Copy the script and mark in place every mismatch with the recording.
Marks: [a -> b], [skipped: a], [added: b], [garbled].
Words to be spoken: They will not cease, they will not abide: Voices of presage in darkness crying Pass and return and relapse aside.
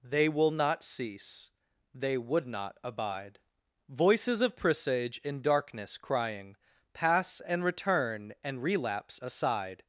They will not cease, they [will -> would] not abide: Voices of presage in darkness crying Pass and return and relapse aside.